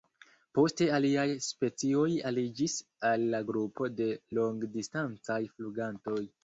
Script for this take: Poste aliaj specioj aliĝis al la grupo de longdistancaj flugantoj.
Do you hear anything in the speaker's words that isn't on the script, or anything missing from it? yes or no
no